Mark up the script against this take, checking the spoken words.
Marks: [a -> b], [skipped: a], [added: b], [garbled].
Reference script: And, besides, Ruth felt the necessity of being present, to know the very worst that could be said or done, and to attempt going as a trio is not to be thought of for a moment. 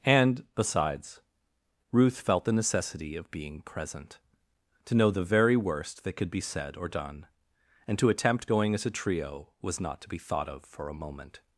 And, besides, Ruth felt the necessity of being present, to know the very worst that could be said or done, and to attempt going as a trio [is -> was] not to be thought of for a moment.